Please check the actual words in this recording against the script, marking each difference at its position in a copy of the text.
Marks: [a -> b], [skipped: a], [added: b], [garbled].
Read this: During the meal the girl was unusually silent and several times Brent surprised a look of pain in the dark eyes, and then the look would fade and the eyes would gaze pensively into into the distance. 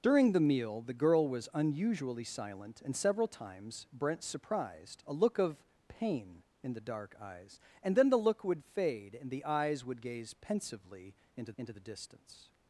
During the meal the girl was unusually silent and several times Brent surprised a look of pain in the dark eyes, and then the look would fade and the eyes would gaze pensively into into the distance.